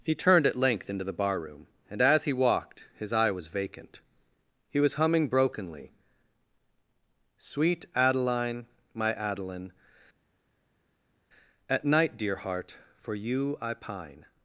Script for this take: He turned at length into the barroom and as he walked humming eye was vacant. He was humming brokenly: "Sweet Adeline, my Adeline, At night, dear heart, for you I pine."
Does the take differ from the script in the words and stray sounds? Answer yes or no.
yes